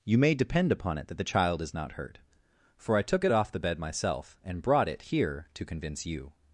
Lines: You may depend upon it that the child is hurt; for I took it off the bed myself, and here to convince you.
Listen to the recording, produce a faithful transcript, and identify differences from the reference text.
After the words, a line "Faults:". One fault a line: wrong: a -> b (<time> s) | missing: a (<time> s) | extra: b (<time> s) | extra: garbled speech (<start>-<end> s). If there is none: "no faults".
You may depend upon it that the child is not hurt; for I took it off the bed myself, and brought it here to convince you.
Faults:
extra: not (1.7 s)
extra: brought it (4.6 s)